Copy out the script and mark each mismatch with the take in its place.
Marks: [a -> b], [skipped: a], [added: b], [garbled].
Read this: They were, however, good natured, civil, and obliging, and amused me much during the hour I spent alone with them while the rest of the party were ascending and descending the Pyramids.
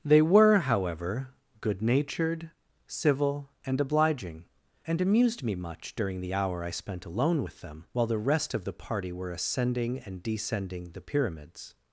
They were, however, good natured, civil, and obliging, and amused me much during the hour I spent alone with them while the rest of the party were ascending and descending the Pyramids.